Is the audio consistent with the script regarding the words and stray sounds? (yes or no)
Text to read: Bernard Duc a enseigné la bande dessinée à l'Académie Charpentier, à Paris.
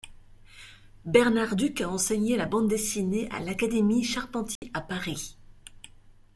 no